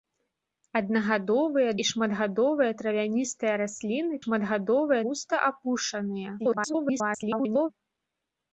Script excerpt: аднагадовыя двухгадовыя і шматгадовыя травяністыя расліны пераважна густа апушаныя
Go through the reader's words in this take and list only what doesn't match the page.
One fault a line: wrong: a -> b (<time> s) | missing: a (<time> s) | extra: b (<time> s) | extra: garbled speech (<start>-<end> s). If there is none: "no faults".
missing: двухгадовыя (1.7 s)
wrong: пераважна -> шматгадовыя (4.2 s)
extra: garbled speech (6.4-7.7 s)